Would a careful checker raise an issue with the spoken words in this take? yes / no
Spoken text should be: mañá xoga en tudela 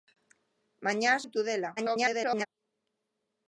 yes